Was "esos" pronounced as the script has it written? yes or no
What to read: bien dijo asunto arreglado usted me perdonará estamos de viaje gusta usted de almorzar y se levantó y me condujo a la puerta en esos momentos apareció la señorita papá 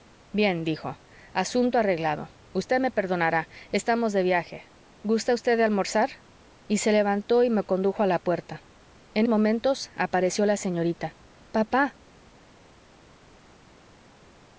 no